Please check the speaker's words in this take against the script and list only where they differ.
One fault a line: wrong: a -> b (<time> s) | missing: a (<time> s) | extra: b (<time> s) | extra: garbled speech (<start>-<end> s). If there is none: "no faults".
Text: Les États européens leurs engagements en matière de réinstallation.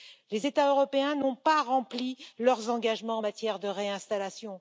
extra: n'ont pas rempli (1.1 s)